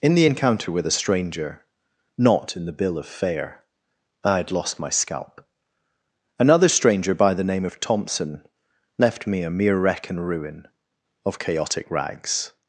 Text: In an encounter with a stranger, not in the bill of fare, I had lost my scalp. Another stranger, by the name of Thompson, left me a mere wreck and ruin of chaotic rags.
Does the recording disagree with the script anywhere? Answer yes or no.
yes